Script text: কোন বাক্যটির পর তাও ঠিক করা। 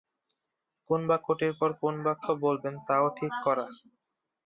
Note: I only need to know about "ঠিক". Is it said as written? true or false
true